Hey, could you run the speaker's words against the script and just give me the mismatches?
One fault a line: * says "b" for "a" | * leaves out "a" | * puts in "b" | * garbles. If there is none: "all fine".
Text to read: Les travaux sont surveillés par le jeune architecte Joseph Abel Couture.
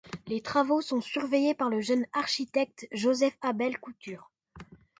all fine